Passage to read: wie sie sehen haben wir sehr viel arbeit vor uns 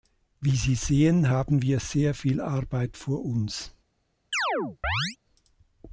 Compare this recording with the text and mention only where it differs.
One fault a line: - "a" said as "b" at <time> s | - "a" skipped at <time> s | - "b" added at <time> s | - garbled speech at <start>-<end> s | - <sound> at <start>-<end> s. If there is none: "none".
- chirp at 4.3-5.2 s